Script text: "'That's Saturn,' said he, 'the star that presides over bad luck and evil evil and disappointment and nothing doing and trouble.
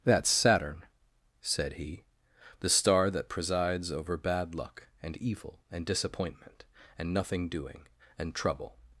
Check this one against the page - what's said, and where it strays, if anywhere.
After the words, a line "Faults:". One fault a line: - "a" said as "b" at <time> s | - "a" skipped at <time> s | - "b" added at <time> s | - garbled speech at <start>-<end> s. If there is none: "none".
"'That's Saturn,' said he, 'the star that presides over bad luck and evil and disappointment and nothing doing and trouble.
Faults:
- "evil" skipped at 5.6 s